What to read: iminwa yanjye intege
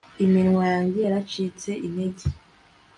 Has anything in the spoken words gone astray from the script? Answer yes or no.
yes